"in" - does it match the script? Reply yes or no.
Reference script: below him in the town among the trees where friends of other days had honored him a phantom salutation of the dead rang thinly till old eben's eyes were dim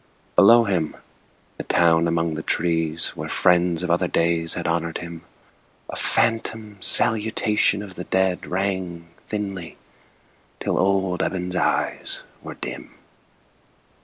no